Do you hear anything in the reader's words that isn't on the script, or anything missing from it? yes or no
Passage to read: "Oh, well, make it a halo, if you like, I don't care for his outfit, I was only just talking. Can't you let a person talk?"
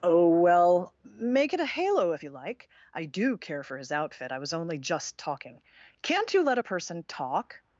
yes